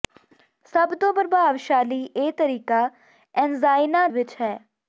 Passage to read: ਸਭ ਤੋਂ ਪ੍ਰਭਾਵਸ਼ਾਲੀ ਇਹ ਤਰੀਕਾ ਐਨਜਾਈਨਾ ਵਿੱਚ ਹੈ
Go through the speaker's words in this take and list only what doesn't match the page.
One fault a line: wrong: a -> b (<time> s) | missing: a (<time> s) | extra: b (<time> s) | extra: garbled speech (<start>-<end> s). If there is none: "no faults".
no faults